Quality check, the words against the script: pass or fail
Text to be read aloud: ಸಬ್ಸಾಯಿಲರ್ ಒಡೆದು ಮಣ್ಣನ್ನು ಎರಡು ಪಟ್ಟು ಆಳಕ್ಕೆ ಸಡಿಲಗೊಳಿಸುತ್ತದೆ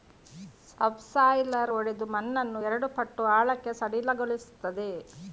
pass